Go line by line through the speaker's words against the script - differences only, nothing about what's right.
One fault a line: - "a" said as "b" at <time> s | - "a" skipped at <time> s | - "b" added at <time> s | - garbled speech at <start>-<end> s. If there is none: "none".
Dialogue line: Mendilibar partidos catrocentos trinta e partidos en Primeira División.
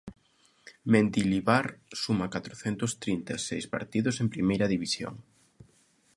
- "partidos" said as "suma" at 2.0 s
- "seis" added at 3.5 s